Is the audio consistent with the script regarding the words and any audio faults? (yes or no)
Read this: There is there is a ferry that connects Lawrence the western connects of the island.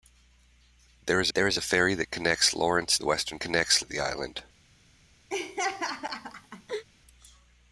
no